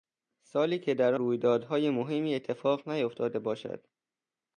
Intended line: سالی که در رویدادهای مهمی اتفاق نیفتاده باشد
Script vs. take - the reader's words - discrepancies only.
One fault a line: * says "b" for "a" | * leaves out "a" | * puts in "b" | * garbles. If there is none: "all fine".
all fine